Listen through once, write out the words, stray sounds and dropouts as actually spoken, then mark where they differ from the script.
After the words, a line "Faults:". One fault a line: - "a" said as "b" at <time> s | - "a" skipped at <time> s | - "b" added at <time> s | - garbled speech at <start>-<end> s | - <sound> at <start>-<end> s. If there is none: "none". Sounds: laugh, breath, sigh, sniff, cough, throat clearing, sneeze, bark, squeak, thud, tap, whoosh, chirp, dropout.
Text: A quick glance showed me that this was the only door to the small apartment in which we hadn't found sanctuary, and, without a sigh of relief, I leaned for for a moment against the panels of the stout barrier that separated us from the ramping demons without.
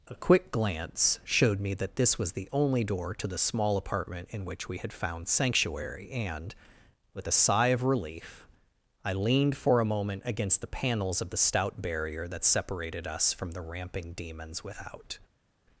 A quick glance showed me that this was the only door to the small apartment in which we had found sanctuary, and, with a sigh of relief, I leaned for a moment against the panels of the stout barrier that separated us from the ramping demons without.
Faults:
- "hadn't" said as "had" at 4.8 s
- "without" said as "with" at 7.1 s
- "for" skipped at 9.8 s